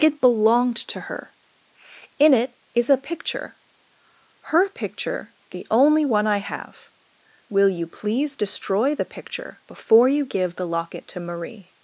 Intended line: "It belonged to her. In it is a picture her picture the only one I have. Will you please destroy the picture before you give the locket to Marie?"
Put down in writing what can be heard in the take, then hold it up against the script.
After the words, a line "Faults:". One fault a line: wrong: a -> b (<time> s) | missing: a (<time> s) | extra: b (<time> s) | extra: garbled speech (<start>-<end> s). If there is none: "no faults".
"It belonged to her. In it is a picture her picture the only one I have. Will you please destroy the picture before you give the locket to Marie?"
Faults:
no faults